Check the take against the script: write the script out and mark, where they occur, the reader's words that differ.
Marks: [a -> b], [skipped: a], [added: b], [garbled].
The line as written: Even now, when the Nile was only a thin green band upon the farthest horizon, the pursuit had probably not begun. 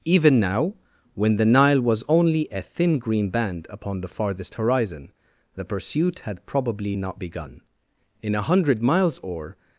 Even now, when the Nile was only a thin green band upon the farthest horizon, the pursuit had probably not begun. [added: In a hundred miles or]